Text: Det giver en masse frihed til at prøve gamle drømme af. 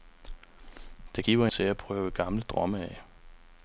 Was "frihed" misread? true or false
true